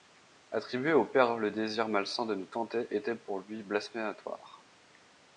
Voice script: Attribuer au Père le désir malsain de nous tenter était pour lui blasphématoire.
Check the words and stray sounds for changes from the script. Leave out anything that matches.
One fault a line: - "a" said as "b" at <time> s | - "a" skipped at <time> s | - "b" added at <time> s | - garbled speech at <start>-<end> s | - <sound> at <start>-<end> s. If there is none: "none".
none